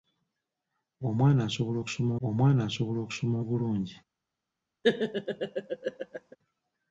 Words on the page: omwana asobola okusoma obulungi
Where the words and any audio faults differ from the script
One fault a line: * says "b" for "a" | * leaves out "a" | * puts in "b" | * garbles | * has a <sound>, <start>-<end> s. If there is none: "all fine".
* puts in "omwana asobola okusoma"
* has a laugh, 4.8-6.4 s